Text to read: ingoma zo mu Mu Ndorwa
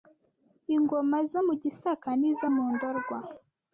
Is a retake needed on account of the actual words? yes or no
yes